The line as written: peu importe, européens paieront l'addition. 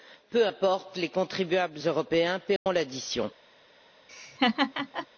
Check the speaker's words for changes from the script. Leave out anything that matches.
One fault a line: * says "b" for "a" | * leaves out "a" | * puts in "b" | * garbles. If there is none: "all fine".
* puts in "les contribuables"